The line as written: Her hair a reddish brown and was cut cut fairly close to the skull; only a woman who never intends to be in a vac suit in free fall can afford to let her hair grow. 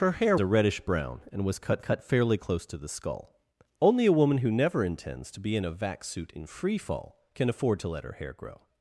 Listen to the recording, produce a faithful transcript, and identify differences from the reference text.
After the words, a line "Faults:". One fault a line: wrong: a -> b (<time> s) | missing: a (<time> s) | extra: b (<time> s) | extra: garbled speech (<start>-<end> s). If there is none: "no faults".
Her hair a reddish brown and was cut cut fairly close to the skull; only a woman who never intends to be in a vac suit in free fall can afford to let her hair grow.
Faults:
no faults